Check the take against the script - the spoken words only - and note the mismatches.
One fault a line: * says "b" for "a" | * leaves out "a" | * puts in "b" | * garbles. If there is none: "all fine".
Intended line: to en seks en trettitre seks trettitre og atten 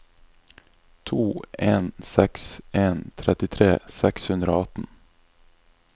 * says "hundre" for "trettitre"